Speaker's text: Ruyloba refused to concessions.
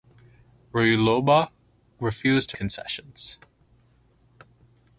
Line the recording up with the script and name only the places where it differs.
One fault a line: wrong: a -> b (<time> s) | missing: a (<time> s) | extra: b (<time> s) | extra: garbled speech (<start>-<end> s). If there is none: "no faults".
no faults